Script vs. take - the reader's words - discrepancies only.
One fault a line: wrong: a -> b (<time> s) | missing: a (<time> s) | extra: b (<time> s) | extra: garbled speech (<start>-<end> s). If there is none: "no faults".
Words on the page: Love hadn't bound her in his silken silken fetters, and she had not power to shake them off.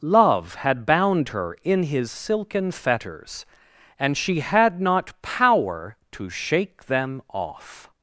wrong: hadn't -> had (0.6 s)
missing: silken (2.7 s)